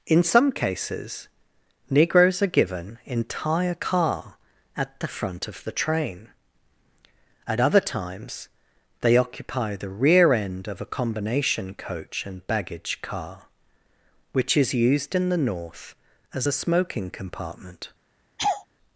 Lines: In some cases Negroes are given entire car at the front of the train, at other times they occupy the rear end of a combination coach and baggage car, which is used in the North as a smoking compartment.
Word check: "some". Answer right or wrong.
right